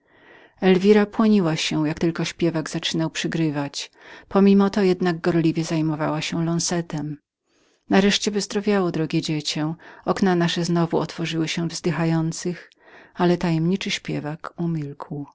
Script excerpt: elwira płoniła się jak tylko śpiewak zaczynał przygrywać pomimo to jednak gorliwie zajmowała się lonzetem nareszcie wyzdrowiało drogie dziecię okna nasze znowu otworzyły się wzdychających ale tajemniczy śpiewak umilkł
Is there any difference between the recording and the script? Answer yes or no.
no